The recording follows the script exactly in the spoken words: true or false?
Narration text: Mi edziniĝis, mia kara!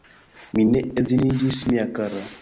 false